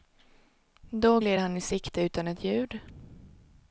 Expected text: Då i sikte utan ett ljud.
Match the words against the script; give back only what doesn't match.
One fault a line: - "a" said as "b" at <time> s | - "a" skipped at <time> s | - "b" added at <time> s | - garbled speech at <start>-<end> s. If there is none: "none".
- "gled han" added at 1.2 s